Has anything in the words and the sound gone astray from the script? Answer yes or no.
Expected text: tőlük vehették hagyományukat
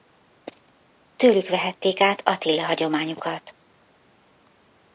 yes